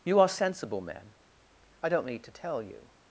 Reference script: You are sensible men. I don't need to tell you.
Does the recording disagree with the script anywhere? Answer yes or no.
no